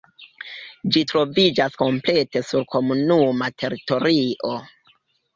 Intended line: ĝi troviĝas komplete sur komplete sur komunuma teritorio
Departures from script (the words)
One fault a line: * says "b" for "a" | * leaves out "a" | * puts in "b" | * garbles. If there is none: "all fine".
* leaves out "komplete sur"